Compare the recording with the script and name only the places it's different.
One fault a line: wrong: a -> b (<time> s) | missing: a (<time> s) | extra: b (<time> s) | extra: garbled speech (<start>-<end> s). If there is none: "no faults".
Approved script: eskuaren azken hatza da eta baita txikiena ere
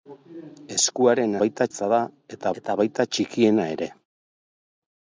wrong: azken -> baita (1.4 s)
extra: eta (2.6 s)